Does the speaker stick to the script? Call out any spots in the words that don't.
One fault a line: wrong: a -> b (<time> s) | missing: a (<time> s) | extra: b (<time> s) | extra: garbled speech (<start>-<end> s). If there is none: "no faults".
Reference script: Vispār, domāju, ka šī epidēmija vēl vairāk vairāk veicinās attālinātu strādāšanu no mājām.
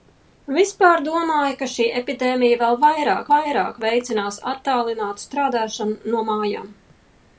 no faults